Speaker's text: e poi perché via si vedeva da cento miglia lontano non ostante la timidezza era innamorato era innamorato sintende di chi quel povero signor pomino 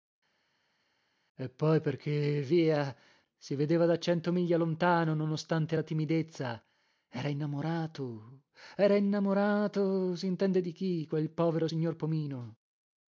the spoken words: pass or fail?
pass